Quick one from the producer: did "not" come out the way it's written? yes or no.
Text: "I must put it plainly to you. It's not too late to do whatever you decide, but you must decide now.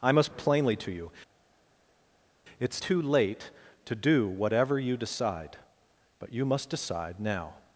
no